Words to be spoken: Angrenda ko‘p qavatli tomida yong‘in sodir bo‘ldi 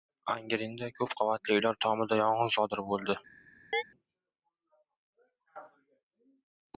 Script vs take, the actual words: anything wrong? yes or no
yes